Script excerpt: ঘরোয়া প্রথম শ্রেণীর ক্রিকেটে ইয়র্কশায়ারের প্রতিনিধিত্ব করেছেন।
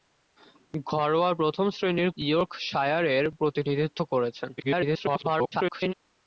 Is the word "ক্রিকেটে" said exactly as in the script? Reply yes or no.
no